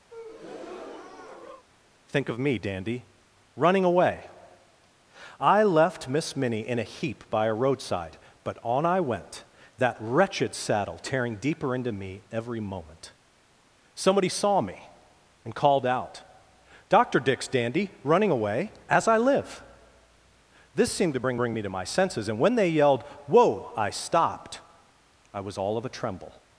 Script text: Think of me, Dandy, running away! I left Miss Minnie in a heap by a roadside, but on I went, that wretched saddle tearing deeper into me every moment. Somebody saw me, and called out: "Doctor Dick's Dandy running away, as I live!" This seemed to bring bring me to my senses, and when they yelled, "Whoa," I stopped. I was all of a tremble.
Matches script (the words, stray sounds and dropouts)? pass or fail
fail